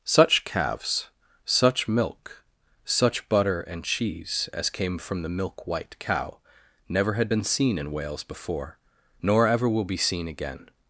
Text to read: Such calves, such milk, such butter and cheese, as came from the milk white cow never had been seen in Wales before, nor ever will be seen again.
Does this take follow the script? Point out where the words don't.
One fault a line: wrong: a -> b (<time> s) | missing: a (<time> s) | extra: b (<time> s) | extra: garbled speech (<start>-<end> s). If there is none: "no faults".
no faults